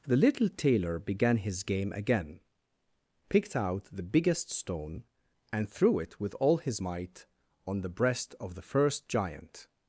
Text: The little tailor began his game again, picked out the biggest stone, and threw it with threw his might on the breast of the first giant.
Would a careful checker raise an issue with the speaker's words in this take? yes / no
yes